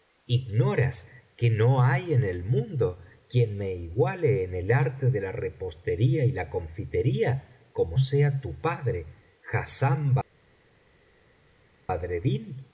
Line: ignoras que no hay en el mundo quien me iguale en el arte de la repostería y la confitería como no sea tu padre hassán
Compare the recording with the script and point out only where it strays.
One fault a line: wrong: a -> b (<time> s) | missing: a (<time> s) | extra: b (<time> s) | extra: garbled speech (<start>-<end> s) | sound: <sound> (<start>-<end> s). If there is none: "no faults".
missing: no (8.0 s)